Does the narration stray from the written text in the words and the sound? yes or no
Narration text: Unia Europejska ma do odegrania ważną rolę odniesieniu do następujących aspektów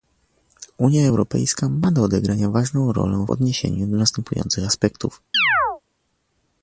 yes